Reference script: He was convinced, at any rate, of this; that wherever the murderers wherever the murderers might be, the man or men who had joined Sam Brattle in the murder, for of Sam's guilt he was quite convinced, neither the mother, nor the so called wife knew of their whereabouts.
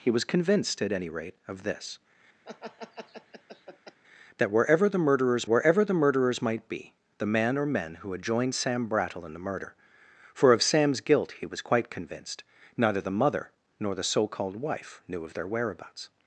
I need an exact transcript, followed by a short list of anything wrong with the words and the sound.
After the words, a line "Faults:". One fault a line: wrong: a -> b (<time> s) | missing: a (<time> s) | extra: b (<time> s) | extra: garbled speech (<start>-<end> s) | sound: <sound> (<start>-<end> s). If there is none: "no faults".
He was convinced, at any rate, of this; that wherever the murderers wherever the murderers might be, the man or men who had joined Sam Brattle in the murder, for of Sam's guilt he was quite convinced, neither the mother, nor the so called wife knew of their whereabouts.
Faults:
sound: laugh (2.4-4.0 s)